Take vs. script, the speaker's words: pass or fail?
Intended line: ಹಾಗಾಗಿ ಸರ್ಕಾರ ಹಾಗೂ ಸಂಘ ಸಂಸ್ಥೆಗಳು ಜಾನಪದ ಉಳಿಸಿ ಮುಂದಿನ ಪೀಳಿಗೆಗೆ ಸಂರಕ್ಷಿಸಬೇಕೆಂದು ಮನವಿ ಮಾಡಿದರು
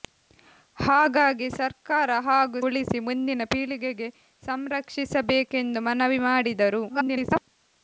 fail